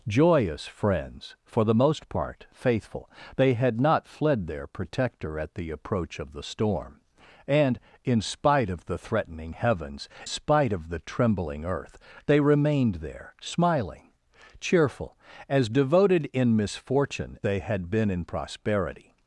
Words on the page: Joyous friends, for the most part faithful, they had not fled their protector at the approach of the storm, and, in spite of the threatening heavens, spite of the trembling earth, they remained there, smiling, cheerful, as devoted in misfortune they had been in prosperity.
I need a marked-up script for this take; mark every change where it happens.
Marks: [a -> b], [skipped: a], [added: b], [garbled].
Joyous friends, for the most part faithful, they had not fled their protector at the approach of the storm, and, in spite of the threatening heavens, spite of the trembling earth, they remained there, smiling, cheerful, as devoted in misfortune they had been in prosperity.